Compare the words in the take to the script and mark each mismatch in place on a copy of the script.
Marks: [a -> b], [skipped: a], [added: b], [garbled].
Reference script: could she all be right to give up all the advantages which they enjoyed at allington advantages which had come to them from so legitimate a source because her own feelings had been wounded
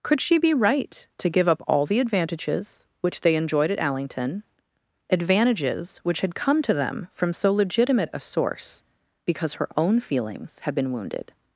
could she [skipped: all] be right to give up all the advantages which they enjoyed at allington advantages which had come to them from so legitimate a source because her own feelings had been wounded